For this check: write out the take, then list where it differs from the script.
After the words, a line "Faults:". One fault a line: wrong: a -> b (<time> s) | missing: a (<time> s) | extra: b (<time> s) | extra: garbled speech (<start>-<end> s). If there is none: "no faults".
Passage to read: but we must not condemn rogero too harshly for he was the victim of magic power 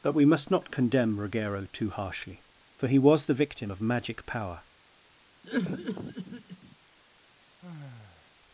but we must not condemn rogero too harshly for he was the victim of magic power
Faults:
no faults